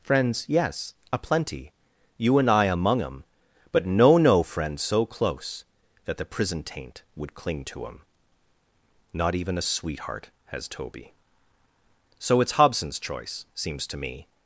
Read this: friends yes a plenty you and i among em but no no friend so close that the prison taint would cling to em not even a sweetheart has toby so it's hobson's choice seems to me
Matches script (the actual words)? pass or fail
pass